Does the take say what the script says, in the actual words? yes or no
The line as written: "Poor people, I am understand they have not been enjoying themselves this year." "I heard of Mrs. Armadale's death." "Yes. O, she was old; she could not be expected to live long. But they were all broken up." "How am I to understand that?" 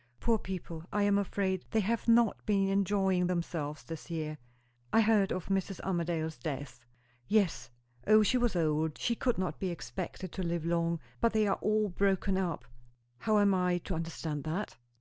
no